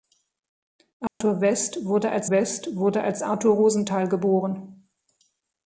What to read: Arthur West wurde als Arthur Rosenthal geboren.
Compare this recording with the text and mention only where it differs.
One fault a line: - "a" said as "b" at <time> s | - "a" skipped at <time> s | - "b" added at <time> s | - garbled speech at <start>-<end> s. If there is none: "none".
- "West wurde als" added at 2.3 s